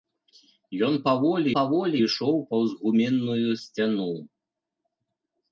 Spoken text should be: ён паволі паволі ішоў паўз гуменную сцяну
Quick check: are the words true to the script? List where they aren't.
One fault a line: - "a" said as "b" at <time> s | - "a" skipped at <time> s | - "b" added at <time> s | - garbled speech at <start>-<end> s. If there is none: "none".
none